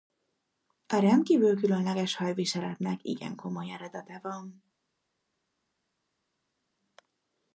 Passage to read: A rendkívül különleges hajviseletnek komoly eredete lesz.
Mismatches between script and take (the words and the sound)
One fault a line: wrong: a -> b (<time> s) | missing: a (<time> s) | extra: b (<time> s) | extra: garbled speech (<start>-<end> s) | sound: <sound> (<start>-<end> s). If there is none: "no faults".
extra: igen (3.0 s)
wrong: lesz -> van (4.2 s)